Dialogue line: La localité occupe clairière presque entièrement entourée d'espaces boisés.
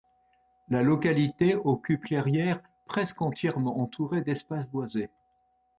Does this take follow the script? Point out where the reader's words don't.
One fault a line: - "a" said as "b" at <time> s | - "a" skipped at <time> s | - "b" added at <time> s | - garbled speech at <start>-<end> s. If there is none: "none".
none